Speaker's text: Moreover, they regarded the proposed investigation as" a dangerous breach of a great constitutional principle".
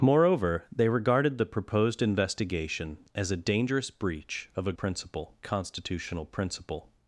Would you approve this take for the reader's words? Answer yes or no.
no